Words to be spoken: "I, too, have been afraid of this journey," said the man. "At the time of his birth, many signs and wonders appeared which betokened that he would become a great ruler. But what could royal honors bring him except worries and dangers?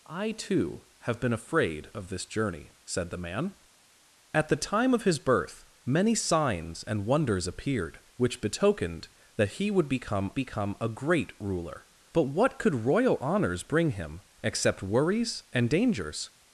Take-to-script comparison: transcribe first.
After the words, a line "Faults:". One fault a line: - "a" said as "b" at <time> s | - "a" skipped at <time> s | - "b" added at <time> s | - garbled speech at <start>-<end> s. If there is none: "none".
"I, too, have been afraid of this journey," said the man. "At the time of his birth, many signs and wonders appeared which betokened that he would become become a great ruler. But what could royal honors bring him except worries and dangers?
Faults:
- "become" added at 10.3 s